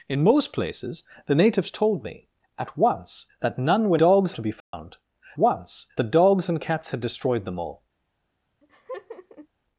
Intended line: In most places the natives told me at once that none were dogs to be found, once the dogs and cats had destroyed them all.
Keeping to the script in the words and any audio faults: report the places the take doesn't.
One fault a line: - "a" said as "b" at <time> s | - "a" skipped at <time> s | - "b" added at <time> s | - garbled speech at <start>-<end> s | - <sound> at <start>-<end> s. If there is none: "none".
- dropout at 4.6-4.7 s
- laugh at 8.6-9.5 s